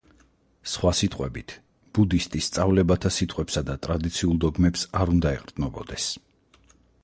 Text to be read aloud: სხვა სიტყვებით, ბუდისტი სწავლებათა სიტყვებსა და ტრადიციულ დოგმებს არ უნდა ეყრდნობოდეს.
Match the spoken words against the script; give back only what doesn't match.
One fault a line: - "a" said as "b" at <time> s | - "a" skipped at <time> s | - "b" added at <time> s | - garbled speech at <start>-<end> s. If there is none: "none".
none